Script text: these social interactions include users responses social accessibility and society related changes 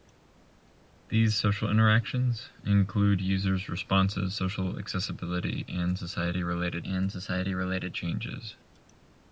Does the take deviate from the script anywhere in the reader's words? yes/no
yes